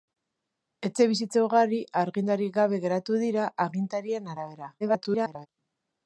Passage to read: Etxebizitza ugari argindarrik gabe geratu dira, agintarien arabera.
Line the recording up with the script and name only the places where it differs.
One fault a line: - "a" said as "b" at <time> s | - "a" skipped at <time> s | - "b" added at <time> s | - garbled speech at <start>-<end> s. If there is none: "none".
- garbled speech at 4.8-5.5 s